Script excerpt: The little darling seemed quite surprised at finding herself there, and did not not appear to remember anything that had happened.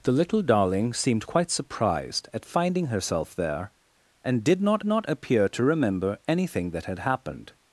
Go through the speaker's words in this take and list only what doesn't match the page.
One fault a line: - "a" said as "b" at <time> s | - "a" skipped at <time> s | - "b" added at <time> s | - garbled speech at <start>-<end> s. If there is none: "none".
none